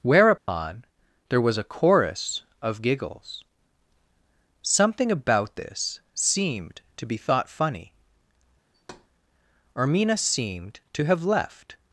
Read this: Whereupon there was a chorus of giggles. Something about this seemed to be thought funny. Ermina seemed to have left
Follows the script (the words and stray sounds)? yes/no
no